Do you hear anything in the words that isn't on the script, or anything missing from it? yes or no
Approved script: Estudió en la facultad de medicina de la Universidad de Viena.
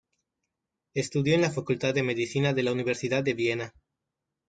no